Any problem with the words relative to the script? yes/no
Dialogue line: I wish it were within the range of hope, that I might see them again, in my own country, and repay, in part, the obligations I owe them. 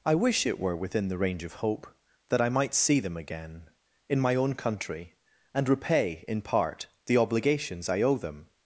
no